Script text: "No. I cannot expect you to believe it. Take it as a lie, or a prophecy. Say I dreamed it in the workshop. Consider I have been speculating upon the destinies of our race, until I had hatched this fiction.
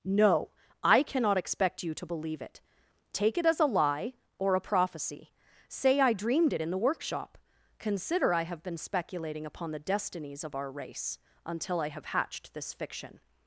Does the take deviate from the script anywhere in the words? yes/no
yes